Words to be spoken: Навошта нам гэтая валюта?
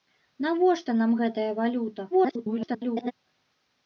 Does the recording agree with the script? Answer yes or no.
no